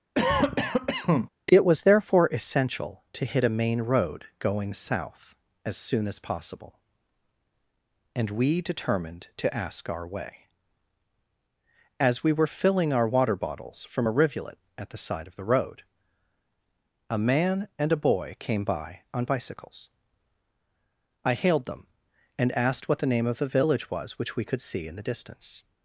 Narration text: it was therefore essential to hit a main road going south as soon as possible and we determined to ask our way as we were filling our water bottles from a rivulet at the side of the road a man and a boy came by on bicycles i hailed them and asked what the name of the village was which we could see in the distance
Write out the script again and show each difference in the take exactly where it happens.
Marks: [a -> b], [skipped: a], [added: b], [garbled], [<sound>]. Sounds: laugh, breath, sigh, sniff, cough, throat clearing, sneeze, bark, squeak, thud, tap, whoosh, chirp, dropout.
[cough] it was therefore essential to hit a main road going south as soon as possible and we determined to ask our way as we were filling our water bottles from a rivulet at the side of the road a man and a boy came by on bicycles i hailed them and asked what the name of the village was which we could see in the distance